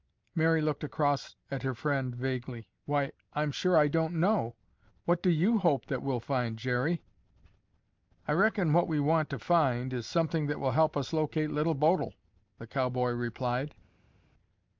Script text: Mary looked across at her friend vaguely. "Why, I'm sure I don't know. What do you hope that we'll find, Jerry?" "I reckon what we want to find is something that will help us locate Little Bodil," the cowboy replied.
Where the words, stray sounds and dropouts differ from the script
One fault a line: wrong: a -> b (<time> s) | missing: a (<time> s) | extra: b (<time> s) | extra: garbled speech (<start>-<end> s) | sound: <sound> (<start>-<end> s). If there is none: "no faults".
no faults